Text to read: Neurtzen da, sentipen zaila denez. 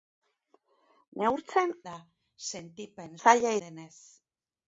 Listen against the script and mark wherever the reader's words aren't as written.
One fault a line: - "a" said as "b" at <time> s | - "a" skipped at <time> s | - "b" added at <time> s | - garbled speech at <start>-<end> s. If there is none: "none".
none